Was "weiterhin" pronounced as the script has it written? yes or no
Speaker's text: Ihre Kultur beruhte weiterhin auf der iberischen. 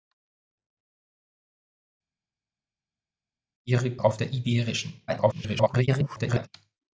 no